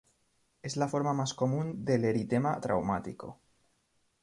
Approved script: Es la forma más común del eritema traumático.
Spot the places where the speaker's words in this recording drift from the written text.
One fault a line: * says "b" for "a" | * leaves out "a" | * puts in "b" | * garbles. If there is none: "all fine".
all fine